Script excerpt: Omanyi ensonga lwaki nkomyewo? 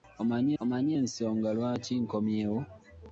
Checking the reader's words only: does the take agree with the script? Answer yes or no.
no